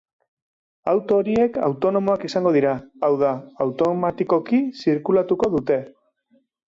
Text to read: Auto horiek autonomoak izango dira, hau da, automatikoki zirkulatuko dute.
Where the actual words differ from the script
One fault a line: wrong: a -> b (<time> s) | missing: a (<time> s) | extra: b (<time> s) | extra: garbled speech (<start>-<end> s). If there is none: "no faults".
no faults